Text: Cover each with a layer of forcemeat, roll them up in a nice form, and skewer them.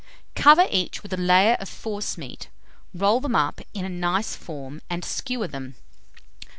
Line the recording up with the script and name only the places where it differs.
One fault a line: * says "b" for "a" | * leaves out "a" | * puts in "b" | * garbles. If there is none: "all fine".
all fine